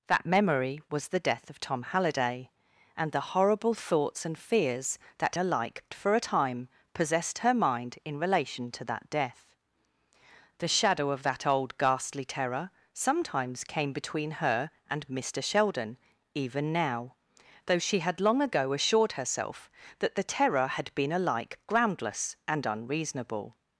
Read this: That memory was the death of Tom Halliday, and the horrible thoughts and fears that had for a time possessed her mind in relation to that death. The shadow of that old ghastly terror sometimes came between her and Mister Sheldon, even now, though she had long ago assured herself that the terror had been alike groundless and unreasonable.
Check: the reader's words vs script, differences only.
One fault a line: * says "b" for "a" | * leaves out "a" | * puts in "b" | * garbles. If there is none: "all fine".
* says "alike" for "had"